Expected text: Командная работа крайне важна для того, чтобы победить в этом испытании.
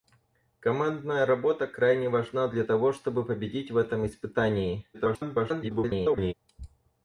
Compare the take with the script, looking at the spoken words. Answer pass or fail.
fail